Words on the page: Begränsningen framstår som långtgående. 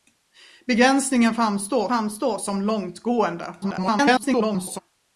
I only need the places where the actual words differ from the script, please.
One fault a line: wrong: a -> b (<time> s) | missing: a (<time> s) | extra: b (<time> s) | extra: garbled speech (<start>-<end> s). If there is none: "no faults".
extra: framstår (1.9 s)
extra: garbled speech (3.6-4.8 s)